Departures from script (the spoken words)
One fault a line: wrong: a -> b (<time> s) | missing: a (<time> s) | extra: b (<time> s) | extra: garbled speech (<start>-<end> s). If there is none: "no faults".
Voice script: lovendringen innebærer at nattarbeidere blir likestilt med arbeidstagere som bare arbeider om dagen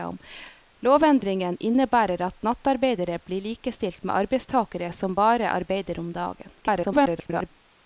extra: garbled speech (6.6-7.5 s)